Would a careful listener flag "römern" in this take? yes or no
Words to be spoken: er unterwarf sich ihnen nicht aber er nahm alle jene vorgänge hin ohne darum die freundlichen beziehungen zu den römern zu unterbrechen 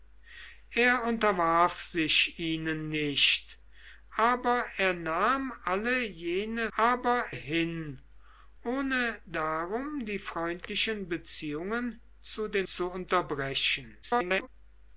yes